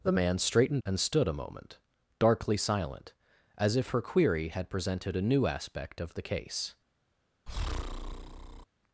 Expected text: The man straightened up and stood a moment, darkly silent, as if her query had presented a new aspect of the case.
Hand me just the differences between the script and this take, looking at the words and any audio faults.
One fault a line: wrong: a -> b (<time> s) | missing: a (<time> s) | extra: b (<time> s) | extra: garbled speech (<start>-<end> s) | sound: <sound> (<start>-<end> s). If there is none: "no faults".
missing: up (0.8 s)
sound: breath (7.5-8.7 s)